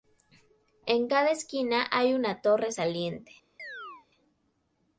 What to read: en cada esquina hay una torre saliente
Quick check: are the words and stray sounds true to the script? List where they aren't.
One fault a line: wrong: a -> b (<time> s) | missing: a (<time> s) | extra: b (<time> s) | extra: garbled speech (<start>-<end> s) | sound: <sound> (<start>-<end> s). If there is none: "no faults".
sound: chirp (3.6-4.1 s)